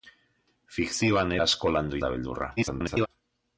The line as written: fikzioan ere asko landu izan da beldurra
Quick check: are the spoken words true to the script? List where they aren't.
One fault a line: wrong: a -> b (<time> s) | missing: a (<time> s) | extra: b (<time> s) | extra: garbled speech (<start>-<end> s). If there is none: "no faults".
missing: ere (1.4 s)
missing: izan (2.0 s)
extra: garbled speech (2.6-3.1 s)